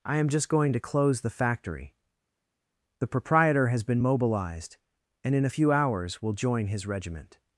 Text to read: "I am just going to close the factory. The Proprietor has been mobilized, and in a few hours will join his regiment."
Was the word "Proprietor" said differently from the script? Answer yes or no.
no